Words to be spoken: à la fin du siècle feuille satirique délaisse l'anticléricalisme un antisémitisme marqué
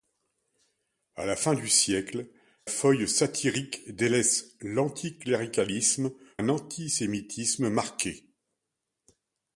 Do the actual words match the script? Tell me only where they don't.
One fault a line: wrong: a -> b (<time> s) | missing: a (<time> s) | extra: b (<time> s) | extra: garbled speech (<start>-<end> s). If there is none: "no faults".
no faults